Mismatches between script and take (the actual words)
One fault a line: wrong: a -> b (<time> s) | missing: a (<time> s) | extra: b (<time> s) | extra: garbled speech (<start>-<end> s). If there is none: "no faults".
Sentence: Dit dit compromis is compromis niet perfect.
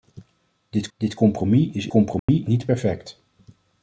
no faults